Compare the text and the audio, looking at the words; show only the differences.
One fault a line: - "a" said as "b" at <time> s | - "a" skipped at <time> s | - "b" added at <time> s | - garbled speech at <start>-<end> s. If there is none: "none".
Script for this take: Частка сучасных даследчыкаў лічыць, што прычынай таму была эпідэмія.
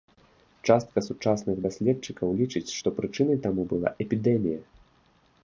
none